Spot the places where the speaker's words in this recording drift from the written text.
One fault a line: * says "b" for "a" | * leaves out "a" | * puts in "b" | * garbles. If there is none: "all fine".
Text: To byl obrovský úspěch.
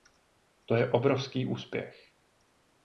* says "je" for "byl"